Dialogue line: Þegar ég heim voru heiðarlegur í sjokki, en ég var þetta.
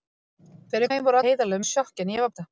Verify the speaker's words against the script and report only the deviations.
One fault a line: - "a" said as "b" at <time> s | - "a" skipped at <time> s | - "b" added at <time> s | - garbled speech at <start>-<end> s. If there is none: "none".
none